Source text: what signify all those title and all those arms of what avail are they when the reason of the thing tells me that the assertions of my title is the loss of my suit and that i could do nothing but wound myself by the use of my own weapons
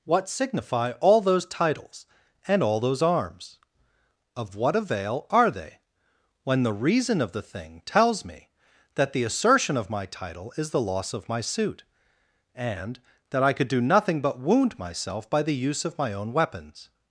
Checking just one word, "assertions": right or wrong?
wrong